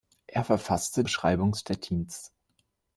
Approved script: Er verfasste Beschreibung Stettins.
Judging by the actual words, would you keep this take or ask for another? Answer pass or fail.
pass